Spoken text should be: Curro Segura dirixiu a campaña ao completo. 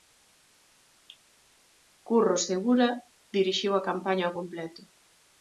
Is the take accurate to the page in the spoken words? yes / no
yes